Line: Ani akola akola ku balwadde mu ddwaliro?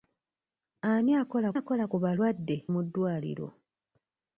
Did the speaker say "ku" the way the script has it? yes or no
yes